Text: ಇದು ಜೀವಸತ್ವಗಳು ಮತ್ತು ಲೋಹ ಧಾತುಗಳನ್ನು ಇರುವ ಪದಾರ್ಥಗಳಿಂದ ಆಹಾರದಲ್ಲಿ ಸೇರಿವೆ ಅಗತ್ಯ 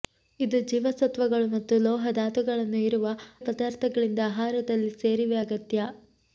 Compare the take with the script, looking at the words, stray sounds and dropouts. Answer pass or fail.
pass